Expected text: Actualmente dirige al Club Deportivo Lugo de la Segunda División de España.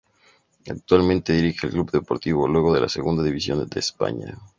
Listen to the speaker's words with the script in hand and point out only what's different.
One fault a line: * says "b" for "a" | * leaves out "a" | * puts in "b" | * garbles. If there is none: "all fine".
all fine